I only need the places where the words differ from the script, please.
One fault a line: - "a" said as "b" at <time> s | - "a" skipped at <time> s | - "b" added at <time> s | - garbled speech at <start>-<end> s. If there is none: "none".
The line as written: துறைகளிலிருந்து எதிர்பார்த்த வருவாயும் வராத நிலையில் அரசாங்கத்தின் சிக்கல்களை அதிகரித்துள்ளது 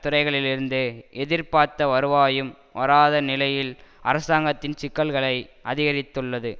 none